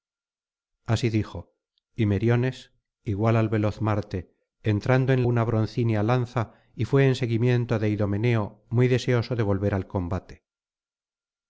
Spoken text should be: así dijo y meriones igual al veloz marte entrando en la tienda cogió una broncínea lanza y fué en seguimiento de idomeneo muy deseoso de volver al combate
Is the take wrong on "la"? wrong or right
wrong